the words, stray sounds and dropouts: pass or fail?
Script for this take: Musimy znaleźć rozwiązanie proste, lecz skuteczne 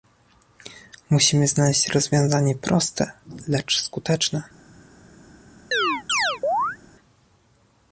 fail